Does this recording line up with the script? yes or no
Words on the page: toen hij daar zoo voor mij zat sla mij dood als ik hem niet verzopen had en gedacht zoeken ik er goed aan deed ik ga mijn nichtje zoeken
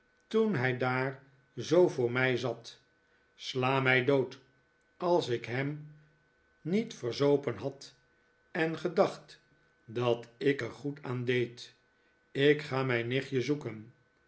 no